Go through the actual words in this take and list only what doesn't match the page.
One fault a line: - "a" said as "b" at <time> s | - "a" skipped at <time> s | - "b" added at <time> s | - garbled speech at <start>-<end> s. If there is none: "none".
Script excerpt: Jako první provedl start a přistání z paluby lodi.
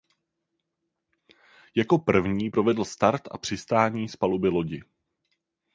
none